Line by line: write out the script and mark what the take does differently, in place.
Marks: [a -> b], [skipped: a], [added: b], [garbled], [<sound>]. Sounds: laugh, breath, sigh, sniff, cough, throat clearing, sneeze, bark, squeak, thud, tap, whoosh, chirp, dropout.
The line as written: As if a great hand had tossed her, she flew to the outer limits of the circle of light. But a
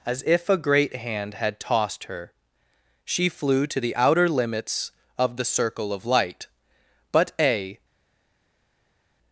As if a great hand had tossed her, she flew to the outer limits of the circle of light. But a